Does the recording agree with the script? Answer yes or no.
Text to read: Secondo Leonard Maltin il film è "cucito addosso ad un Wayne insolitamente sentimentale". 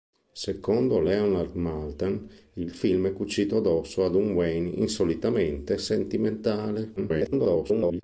no